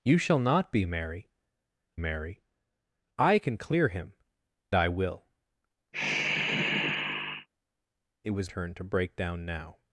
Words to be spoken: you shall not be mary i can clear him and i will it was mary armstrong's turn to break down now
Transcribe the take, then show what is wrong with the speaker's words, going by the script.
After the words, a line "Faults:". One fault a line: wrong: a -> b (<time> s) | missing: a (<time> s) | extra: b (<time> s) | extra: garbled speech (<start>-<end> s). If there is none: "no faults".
you shall not be mary mary i can clear him i will it was turn to break down now
Faults:
extra: mary (2.0 s)
missing: and (4.1 s)
missing: mary armstrong's (8.5 s)